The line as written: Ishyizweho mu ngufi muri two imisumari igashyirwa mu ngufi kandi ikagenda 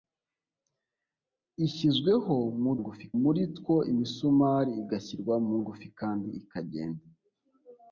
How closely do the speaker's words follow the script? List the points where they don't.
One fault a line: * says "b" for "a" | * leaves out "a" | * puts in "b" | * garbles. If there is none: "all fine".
all fine